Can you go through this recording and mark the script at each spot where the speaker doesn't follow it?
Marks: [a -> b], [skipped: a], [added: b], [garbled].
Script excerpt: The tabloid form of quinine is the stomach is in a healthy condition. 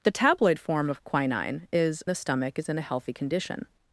The tabloid form of quinine is the stomach is in a healthy condition.